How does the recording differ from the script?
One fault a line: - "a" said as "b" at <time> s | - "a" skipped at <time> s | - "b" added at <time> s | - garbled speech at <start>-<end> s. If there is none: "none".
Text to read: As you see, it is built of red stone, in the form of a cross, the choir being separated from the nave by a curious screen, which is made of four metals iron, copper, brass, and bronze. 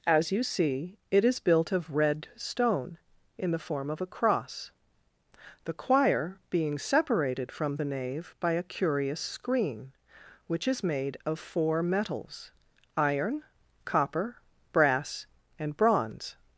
none